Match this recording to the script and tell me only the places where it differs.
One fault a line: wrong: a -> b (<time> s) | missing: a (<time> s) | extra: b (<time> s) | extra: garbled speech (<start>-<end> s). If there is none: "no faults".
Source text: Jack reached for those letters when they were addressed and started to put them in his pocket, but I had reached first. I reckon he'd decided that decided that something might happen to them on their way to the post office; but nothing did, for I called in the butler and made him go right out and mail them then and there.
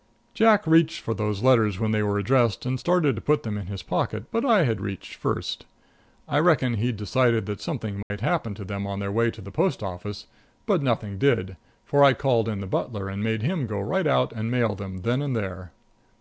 missing: decided that (7.6 s)